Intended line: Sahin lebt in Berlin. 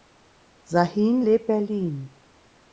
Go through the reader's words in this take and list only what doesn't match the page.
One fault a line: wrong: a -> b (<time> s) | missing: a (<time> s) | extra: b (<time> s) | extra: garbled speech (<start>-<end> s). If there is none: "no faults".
missing: in (1.5 s)